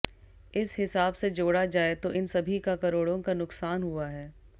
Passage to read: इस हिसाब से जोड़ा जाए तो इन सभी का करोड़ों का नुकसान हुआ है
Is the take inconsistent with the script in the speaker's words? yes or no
no